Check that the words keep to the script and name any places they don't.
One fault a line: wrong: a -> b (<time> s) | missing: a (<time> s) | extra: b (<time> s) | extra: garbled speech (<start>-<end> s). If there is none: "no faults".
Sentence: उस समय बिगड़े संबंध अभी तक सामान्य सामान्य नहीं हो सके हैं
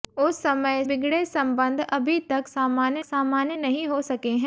no faults